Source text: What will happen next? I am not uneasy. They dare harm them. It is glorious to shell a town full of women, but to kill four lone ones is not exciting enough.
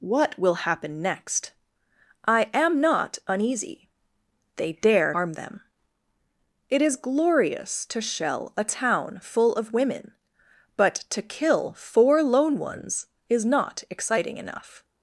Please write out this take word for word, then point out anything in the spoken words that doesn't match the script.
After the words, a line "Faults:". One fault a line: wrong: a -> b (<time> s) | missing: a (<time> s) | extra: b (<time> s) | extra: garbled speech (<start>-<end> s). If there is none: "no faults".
What will happen next? I am not uneasy. They dare harm them. It is glorious to shell a town full of women, but to kill four lone ones is not exciting enough.
Faults:
no faults